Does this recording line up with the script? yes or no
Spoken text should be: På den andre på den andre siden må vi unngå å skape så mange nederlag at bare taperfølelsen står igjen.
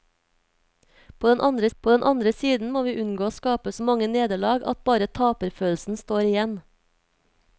yes